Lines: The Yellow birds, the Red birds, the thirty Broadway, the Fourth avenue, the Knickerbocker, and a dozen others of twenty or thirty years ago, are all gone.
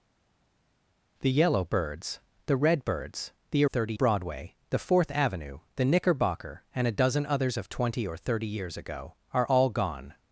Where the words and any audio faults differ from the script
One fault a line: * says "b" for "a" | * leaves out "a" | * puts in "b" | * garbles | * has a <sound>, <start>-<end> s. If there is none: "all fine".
all fine